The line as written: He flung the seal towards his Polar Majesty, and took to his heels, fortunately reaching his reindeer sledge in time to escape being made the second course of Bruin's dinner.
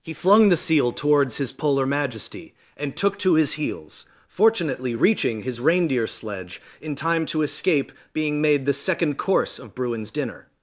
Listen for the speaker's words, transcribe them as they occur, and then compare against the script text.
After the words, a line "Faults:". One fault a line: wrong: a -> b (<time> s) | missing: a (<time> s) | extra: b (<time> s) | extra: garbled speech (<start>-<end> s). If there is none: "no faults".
He flung the seal towards his Polar Majesty, and took to his heels, fortunately reaching his reindeer sledge in time to escape being made the second course of Bruin's dinner.
Faults:
no faults